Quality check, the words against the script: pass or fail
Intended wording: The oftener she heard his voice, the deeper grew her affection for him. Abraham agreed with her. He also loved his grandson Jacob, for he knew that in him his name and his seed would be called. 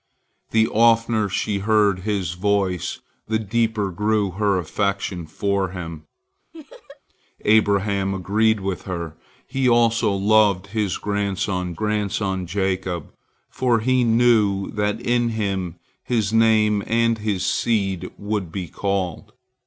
fail